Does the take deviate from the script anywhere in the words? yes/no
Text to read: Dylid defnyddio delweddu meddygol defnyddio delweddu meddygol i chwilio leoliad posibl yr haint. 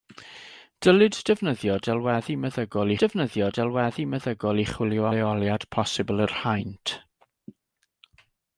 no